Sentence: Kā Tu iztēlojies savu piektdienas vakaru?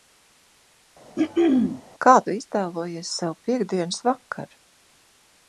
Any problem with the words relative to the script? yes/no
no